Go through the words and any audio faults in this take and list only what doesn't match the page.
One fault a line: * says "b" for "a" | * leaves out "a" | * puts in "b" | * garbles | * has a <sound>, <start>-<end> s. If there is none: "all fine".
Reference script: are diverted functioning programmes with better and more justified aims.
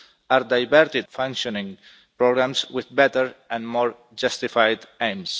all fine